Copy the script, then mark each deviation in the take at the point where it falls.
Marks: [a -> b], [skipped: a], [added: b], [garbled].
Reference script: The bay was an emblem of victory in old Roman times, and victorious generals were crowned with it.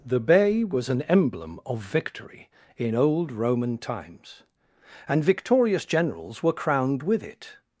The bay was an emblem of victory in old Roman times, and victorious generals were crowned with it.